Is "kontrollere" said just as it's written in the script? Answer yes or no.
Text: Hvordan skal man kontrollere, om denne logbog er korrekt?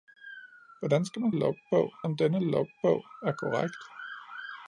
no